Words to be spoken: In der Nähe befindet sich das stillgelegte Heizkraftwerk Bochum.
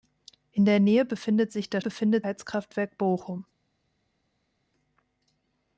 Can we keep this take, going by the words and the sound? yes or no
no